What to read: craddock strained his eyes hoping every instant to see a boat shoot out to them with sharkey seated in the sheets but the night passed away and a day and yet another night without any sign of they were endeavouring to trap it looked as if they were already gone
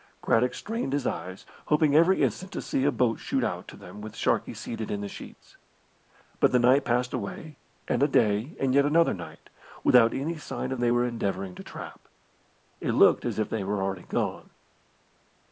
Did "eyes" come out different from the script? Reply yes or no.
no